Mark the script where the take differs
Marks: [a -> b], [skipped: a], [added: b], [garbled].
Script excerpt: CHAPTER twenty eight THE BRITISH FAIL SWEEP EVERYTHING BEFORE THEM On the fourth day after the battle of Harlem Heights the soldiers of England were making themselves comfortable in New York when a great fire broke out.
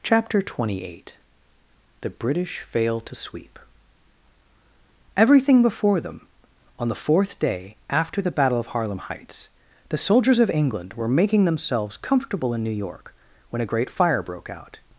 CHAPTER twenty eight THE BRITISH FAIL [added: to] SWEEP EVERYTHING BEFORE THEM On the fourth day after the battle of Harlem Heights the soldiers of England were making themselves comfortable in New York when a great fire broke out.